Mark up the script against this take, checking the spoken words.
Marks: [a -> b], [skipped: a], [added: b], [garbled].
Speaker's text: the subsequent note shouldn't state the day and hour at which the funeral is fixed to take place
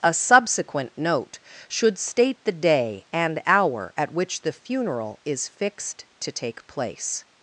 [the -> a] subsequent note [shouldn't -> should] state the day and hour at which the funeral is fixed to take place